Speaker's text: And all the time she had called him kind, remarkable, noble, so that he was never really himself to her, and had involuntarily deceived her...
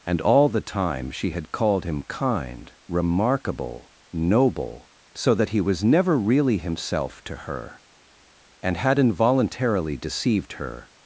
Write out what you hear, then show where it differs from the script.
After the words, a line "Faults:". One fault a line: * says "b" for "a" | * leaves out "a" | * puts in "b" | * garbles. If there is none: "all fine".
And all the time she had called him kind, remarkable, noble, so that he was never really himself to her, and had involuntarily deceived her...
Faults:
all fine